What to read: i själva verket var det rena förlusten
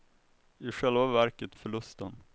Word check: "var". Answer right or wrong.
wrong